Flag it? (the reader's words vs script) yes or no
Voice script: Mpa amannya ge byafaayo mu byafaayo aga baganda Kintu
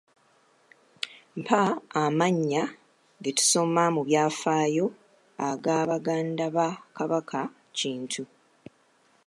yes